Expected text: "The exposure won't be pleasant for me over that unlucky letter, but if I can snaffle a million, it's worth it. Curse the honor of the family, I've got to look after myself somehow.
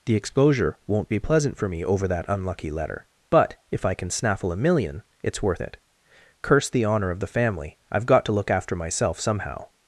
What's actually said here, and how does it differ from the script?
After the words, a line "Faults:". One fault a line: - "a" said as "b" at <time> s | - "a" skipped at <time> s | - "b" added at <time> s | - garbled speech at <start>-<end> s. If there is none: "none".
"The exposure won't be pleasant for me over that unlucky letter, but if I can snaffle a million, it's worth it. Curse the honor of the family, I've got to look after myself somehow.
Faults:
none